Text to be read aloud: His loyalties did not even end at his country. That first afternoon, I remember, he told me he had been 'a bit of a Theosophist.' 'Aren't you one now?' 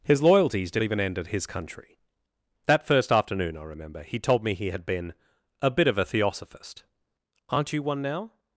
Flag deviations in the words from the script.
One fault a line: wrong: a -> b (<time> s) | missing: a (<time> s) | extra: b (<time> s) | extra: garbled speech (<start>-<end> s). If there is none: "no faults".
missing: not (0.8 s)